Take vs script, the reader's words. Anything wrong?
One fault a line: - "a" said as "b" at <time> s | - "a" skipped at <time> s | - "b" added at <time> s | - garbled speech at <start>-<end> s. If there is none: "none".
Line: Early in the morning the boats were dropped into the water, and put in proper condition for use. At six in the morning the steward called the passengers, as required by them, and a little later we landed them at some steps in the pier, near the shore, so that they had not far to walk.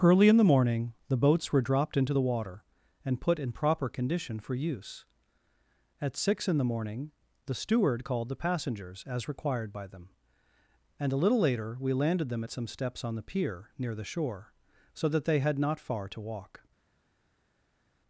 - "in" said as "on" at 13.1 s